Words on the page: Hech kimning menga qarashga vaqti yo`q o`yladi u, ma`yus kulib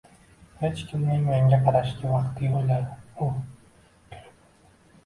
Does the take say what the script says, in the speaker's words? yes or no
no